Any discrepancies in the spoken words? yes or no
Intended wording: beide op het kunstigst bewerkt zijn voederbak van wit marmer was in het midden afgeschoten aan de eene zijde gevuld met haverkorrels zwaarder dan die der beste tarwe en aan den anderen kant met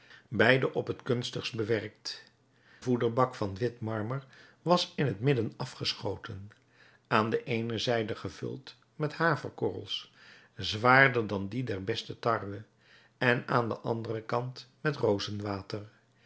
yes